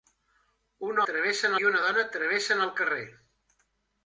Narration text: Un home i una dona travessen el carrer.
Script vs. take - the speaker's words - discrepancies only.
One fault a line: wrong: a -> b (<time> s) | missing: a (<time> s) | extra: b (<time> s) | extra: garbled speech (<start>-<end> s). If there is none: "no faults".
wrong: home -> travessen (1.1 s)